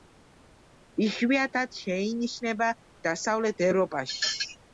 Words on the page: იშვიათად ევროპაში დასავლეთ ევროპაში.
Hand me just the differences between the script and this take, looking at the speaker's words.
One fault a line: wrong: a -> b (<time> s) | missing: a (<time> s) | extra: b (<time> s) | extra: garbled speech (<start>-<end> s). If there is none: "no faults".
wrong: ევროპაში -> შეინიშნება (1.8 s)